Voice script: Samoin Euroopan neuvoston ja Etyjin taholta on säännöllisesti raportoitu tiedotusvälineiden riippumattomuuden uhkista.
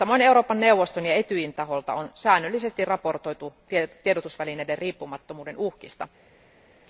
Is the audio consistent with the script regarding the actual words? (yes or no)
yes